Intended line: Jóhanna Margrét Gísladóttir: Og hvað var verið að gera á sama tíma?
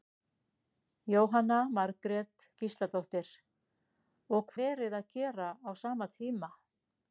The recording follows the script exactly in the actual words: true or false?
false